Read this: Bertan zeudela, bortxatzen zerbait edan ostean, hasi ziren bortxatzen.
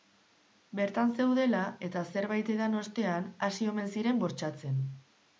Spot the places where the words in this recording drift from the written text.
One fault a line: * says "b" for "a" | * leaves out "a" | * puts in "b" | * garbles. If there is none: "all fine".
* says "eta" for "bortxatzen"
* puts in "omen"